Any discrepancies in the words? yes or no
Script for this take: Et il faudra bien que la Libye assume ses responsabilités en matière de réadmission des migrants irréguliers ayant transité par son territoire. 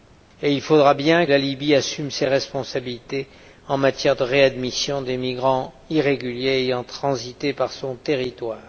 yes